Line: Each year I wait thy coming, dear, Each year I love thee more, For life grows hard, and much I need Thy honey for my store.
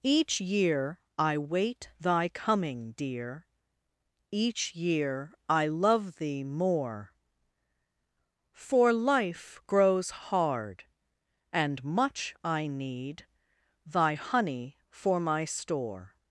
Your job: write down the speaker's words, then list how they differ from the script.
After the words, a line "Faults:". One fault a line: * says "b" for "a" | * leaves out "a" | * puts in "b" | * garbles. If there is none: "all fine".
Each year I wait thy coming, dear, Each year I love thee more, For life grows hard, and much I need Thy honey for my store.
Faults:
all fine